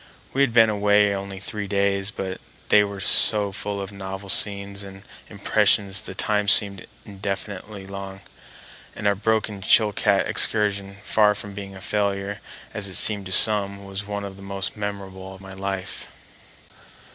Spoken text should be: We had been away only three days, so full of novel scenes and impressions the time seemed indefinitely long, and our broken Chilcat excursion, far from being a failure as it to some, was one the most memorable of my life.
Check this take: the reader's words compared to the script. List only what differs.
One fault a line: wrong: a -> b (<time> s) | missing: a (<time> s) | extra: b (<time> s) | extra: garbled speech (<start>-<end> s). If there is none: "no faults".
extra: but they were (2.1 s)
extra: seemed (13.0 s)
extra: of (14.2 s)